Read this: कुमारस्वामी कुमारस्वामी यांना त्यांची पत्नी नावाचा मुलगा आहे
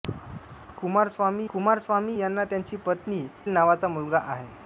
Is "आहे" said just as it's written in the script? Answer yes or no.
yes